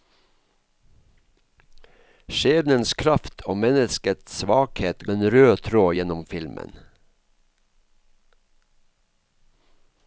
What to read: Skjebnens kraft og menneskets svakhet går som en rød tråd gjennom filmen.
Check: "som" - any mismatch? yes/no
yes